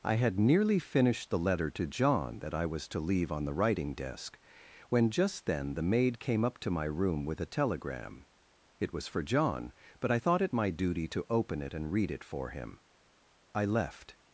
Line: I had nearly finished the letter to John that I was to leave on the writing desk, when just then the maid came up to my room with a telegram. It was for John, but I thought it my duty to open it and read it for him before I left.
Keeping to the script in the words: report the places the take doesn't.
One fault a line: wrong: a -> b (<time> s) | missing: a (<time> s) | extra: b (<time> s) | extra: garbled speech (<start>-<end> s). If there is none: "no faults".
missing: before (12.8 s)